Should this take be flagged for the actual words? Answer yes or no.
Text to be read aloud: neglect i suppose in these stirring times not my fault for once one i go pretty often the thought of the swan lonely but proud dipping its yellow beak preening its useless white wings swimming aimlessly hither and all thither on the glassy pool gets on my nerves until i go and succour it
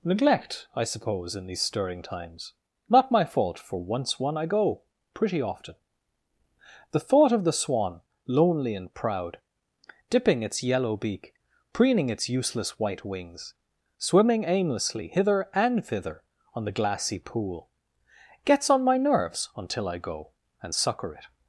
yes